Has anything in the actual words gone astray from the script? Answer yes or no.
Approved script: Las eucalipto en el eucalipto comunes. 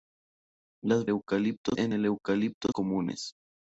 no